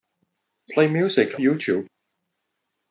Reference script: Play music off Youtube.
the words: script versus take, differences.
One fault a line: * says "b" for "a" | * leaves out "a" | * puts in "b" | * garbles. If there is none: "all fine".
* leaves out "off"